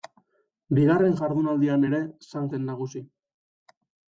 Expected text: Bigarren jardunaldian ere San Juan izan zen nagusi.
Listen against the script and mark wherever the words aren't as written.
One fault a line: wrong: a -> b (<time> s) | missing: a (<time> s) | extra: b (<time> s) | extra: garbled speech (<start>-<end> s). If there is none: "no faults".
missing: Juan izan (2.5 s)